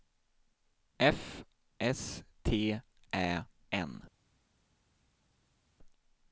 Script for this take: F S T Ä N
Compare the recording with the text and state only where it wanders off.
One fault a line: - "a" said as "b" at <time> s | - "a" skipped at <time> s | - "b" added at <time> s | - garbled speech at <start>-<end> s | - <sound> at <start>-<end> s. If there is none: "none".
none